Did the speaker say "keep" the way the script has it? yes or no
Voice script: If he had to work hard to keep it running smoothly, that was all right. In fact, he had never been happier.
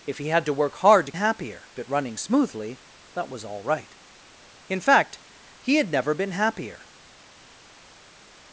no